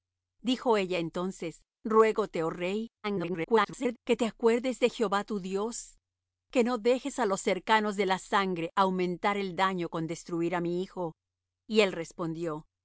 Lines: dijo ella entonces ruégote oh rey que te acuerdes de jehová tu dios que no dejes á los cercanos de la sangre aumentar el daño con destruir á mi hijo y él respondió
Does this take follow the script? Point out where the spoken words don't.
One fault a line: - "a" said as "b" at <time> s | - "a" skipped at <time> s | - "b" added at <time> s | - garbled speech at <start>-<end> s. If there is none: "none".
- garbled speech at 3.0-4.0 s